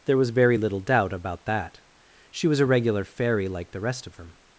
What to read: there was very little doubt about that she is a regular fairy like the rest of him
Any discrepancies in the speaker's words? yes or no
yes